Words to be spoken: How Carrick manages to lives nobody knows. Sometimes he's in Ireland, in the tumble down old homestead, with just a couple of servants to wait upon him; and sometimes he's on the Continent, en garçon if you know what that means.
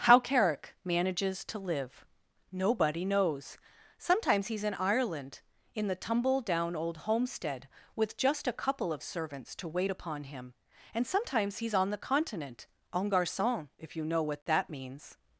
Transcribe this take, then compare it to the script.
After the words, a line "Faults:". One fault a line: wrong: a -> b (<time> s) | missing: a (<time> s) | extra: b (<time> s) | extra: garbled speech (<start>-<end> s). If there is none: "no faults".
How Carrick manages to live nobody knows. Sometimes he's in Ireland, in the tumble down old homestead, with just a couple of servants to wait upon him; and sometimes he's on the Continent, en garçon if you know what that means.
Faults:
wrong: lives -> live (1.6 s)